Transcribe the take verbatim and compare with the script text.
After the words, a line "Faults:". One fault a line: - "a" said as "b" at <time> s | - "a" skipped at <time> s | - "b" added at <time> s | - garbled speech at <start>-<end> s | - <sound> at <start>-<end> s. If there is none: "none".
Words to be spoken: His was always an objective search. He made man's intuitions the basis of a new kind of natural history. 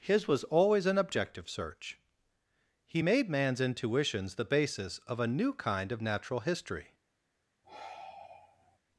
His was always an objective search. He made man's intuitions the basis of a new kind of natural history.
Faults:
- sigh at 7.6-8.8 s